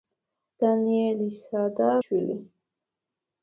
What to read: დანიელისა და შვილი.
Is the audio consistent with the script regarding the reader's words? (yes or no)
yes